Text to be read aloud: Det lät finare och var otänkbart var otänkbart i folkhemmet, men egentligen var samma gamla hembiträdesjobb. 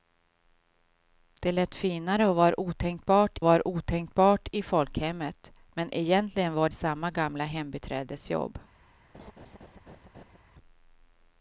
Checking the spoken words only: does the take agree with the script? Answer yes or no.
yes